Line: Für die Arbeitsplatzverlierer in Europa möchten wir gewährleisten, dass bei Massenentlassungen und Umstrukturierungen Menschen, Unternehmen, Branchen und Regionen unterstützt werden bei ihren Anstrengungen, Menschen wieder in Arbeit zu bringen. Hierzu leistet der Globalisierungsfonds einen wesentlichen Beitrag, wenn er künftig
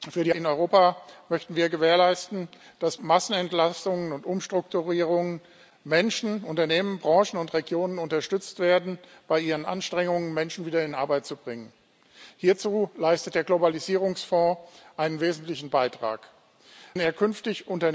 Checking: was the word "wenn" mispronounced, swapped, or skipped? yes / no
yes